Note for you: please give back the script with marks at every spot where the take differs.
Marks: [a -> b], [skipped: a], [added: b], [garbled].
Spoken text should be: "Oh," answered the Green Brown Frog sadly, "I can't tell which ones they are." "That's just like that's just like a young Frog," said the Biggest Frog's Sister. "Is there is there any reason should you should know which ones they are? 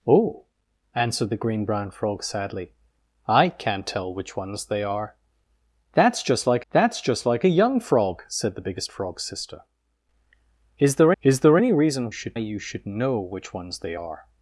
"Oh," answered the Green Brown Frog sadly, "I can't tell which ones they are." "That's just like that's just like a young Frog," said the Biggest Frog's Sister. "Is there is there any reason should you should know which ones they are?